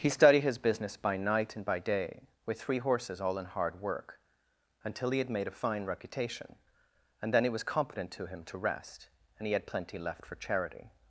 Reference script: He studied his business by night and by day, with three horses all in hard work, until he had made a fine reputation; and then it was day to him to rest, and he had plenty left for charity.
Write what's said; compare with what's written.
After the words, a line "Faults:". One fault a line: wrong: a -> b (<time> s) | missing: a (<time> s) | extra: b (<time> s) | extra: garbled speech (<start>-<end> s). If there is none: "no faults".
He studied his business by night and by day, with three horses all in hard work, until he had made a fine reputation; and then it was competent to him to rest, and he had plenty left for charity.
Faults:
wrong: day -> competent (7.6 s)